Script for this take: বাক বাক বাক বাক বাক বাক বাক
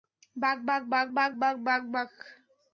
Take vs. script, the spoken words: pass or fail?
pass